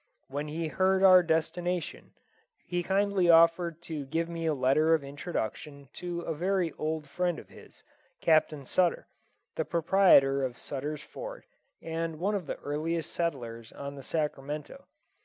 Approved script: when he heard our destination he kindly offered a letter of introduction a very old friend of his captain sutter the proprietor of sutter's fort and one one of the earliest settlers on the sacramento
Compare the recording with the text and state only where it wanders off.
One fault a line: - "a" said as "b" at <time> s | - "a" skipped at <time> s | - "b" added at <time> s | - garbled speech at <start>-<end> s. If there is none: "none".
- "to give me" added at 3.8 s
- "to" added at 5.9 s
- "one" skipped at 12.3 s